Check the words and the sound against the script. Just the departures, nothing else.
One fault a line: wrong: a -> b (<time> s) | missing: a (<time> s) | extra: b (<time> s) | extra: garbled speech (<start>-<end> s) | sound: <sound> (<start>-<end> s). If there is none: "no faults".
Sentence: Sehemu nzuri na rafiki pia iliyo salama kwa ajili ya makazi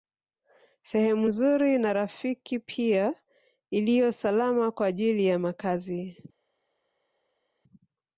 no faults